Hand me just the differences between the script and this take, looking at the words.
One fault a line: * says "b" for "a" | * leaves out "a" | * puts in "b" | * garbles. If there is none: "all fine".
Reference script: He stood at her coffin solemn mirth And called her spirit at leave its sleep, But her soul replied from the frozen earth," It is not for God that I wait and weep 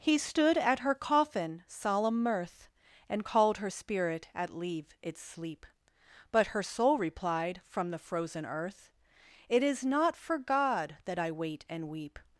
all fine